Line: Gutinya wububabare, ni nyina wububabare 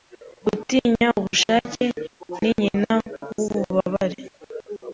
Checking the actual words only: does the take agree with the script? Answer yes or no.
no